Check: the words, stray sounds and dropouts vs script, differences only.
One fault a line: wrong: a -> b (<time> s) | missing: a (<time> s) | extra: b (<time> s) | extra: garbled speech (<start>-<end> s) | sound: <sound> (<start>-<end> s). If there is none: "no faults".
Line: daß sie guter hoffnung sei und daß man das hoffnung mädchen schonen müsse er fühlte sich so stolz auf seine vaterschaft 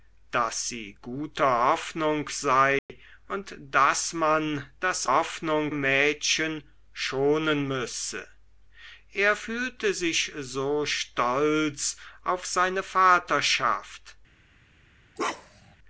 sound: dropout (2.8-2.9 s)
sound: bark (15.2-15.8 s)